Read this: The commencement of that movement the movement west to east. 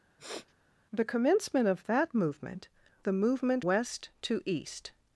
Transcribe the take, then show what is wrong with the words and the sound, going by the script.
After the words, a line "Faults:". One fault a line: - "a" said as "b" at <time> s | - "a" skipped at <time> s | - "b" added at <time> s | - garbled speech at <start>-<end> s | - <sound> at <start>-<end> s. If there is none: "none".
The commencement of that movement the movement west to east.
Faults:
- sniff at 0.2-0.5 s